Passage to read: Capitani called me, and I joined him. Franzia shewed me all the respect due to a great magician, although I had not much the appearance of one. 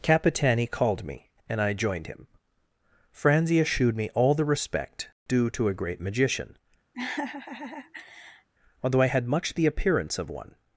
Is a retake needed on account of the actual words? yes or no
yes